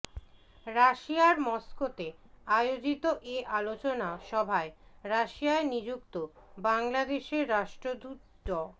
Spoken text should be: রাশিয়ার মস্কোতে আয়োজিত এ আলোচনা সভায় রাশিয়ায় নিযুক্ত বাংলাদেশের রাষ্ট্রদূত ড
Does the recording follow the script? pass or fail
pass